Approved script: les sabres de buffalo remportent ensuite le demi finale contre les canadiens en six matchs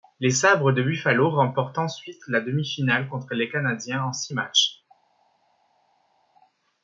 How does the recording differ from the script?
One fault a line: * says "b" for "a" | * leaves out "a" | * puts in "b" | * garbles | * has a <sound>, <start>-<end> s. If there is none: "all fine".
* says "la" for "le"